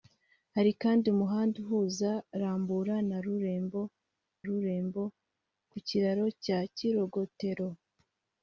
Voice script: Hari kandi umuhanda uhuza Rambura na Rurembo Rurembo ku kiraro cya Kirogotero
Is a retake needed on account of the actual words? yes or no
no